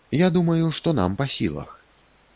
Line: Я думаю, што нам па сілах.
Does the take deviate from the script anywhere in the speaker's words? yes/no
no